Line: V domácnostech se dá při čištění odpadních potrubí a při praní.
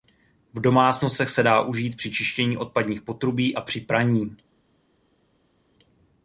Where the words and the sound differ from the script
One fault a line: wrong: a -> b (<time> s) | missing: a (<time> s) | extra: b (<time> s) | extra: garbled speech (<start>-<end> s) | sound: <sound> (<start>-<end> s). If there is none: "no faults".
extra: užít (1.6 s)